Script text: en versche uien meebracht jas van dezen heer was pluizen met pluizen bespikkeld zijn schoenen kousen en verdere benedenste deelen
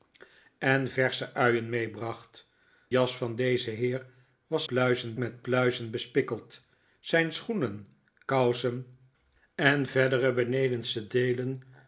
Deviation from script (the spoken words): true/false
false